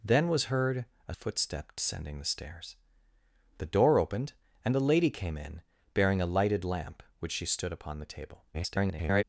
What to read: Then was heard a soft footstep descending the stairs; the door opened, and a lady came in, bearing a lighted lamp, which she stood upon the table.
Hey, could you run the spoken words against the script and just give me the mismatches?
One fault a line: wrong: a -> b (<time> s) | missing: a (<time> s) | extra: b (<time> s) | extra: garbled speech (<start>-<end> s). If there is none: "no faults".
missing: soft (1.1 s)
extra: garbled speech (8.5-9.2 s)